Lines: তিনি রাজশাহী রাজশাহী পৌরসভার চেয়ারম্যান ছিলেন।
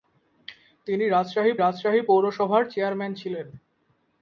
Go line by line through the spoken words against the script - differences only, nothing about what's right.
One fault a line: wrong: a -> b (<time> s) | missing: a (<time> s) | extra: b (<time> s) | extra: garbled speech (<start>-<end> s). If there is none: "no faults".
no faults